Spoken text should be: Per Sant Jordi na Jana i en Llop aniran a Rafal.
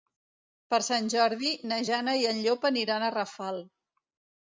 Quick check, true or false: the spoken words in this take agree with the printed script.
true